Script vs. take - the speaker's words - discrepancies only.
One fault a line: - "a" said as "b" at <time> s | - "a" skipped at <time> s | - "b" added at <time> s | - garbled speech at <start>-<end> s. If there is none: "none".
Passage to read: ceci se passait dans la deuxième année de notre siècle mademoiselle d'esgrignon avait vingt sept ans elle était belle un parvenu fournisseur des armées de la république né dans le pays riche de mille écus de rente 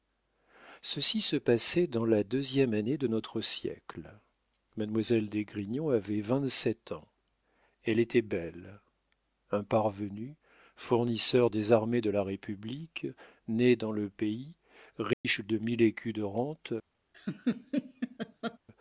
none